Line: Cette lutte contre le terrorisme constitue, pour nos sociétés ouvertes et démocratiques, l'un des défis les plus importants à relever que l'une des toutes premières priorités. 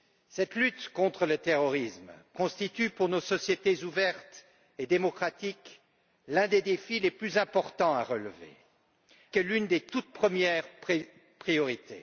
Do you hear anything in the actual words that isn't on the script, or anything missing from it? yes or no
no